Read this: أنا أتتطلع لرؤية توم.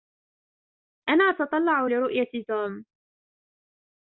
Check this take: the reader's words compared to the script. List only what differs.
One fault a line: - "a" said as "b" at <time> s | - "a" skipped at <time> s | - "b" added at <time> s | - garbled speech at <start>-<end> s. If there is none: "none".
none